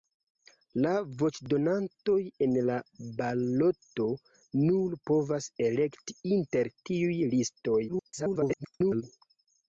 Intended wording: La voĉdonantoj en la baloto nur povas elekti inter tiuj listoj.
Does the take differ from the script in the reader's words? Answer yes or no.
yes